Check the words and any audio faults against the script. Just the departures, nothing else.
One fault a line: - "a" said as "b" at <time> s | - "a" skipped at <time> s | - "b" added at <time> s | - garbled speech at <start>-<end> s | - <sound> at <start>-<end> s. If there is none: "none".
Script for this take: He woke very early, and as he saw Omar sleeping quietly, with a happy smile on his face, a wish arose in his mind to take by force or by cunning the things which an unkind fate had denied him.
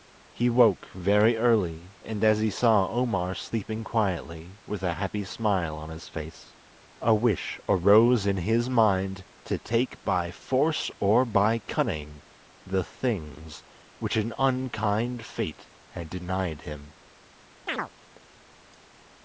- chirp at 17.7-17.9 s